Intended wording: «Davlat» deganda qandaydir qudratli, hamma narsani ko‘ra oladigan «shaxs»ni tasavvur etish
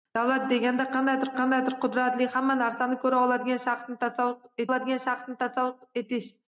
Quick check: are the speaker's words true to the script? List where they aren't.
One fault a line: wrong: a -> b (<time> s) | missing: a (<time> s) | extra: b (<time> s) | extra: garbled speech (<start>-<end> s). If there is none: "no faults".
extra: qandaydir (1.4 s)
extra: oladigan shaxs»ni tasavvur (4.7 s)